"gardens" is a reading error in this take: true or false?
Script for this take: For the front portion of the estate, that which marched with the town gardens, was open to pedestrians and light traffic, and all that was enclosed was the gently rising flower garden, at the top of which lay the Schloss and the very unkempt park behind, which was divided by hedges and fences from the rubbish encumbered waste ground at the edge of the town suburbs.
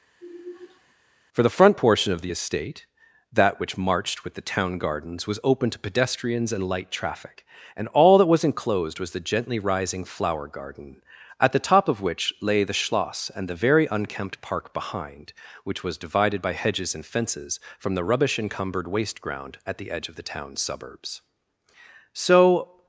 false